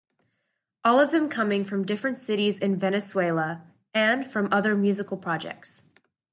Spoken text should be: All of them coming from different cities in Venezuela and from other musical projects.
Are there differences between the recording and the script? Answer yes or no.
no